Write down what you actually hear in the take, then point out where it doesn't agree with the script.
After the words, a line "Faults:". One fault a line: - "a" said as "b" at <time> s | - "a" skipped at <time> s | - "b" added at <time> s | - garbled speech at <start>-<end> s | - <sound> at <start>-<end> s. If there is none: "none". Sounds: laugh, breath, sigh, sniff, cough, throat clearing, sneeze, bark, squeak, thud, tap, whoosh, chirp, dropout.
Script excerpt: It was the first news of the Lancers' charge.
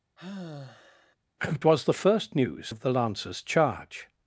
It was the first news of the Lancers' charge.
Faults:
- sigh at 0.2-1.2 s